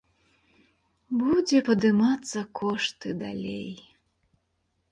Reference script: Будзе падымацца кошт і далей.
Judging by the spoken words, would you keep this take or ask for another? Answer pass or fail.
pass